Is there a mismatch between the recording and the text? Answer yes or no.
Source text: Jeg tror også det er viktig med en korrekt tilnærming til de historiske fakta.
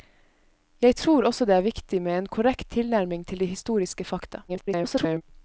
yes